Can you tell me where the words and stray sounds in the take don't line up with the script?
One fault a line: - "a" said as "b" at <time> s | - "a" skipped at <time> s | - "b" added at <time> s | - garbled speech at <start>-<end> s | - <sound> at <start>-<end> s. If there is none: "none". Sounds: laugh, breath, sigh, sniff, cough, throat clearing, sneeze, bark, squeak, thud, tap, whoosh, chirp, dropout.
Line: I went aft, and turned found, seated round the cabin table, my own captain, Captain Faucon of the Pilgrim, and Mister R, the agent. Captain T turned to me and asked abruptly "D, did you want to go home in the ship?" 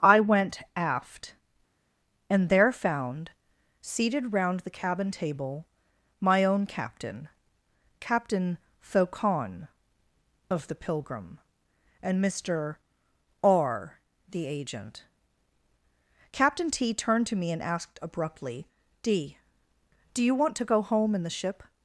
- "turned" said as "there" at 2.5 s
- "did" said as "do" at 20.1 s